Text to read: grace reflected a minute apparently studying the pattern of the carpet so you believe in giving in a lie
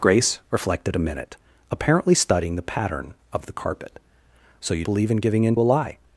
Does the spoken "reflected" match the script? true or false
true